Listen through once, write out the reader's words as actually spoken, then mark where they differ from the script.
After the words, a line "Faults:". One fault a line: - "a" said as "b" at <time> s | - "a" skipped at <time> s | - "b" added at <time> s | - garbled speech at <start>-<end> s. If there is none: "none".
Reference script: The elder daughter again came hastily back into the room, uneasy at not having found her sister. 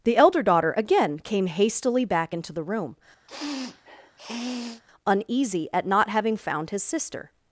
The elder daughter again came hastily back into the room, uneasy at not having found his sister.
Faults:
- "her" said as "his" at 6.7 s